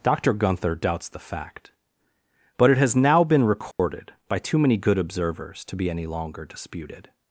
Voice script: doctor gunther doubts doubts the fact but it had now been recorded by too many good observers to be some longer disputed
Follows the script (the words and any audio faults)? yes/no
no